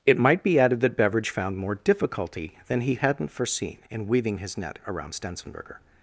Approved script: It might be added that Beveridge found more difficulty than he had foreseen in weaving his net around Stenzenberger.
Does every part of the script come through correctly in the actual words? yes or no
no